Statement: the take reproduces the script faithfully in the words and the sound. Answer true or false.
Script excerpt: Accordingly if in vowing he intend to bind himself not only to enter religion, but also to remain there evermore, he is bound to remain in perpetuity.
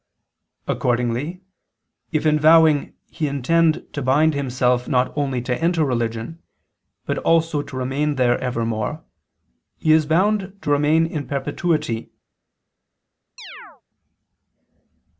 false